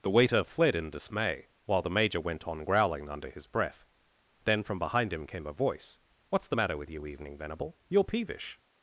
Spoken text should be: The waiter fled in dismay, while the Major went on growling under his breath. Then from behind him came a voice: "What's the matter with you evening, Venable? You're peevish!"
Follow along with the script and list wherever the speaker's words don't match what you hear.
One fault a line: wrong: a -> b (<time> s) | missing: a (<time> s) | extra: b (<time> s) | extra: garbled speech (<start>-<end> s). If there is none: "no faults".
no faults